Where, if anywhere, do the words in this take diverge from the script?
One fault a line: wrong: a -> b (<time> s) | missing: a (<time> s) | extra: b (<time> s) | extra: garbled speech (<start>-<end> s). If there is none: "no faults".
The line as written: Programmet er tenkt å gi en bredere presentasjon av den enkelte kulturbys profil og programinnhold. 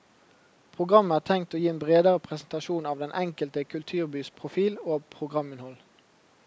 no faults